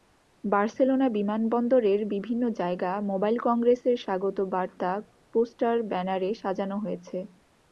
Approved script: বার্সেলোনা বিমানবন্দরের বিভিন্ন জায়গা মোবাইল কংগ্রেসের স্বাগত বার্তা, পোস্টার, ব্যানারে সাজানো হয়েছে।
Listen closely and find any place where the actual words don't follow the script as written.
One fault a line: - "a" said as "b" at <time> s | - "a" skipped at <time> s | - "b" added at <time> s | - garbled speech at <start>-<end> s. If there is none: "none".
none